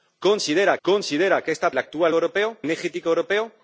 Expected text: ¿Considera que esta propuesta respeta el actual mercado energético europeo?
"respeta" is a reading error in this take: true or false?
true